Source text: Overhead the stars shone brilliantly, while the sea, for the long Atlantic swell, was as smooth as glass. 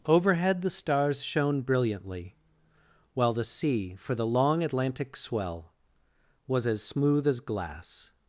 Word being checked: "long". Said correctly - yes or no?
yes